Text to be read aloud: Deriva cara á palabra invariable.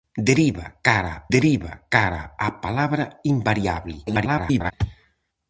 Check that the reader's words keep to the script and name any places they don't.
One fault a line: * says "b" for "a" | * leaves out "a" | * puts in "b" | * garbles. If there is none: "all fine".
* puts in "deriva cara"
* garbles